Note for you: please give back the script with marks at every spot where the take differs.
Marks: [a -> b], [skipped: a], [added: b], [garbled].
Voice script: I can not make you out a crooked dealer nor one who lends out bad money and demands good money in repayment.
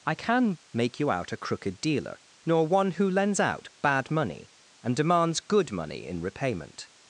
I can [skipped: not] make you out a crooked dealer nor one who lends out bad money and demands good money in repayment.